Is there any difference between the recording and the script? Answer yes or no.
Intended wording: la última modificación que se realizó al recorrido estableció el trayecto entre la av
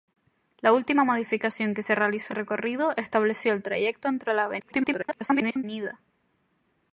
yes